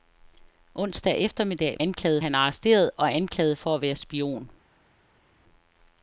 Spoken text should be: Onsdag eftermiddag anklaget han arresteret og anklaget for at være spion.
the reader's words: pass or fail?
pass